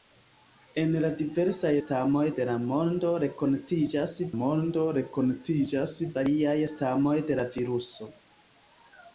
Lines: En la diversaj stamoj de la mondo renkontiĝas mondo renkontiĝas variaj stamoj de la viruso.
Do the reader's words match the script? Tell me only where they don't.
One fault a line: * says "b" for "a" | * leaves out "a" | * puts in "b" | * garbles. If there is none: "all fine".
all fine